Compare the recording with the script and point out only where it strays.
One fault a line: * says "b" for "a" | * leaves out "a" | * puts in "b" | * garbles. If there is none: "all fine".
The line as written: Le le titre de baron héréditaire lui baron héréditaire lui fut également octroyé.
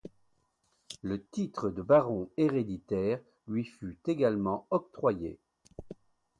* leaves out "le"
* leaves out "baron héréditaire lui"